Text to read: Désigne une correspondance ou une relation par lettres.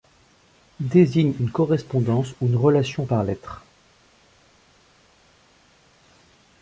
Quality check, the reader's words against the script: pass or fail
pass